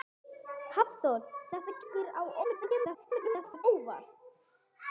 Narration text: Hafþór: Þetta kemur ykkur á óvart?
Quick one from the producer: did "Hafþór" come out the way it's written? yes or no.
yes